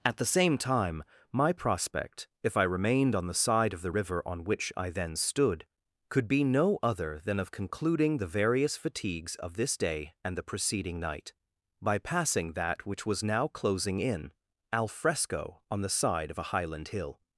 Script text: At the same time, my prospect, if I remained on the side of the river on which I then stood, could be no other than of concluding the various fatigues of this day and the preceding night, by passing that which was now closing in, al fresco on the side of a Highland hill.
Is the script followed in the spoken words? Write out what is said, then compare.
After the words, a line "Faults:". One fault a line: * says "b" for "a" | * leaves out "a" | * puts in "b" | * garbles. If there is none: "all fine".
At the same time, my prospect, if I remained on the side of the river on which I then stood, could be no other than of concluding the various fatigues of this day and the preceding night, by passing that which was now closing in, al fresco on the side of a Highland hill.
Faults:
all fine